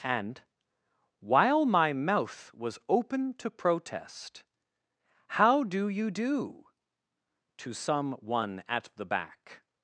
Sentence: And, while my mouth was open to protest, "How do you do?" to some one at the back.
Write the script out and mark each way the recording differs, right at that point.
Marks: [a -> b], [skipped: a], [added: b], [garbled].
And, while my mouth was open to protest, "How do you do?" to some one at the back.